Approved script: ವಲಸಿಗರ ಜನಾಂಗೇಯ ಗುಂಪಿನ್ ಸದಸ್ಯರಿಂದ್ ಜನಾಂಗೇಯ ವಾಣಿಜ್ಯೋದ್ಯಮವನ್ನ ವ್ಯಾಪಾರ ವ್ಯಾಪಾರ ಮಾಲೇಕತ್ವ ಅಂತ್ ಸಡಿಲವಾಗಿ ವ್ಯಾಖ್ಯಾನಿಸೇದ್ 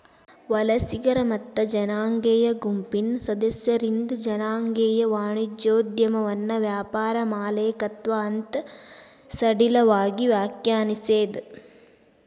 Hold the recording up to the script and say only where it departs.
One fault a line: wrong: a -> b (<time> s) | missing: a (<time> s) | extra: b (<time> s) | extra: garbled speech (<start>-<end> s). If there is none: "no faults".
extra: ಮತ್ತ (1.2 s)
missing: ವ್ಯಾಪಾರ (7.2 s)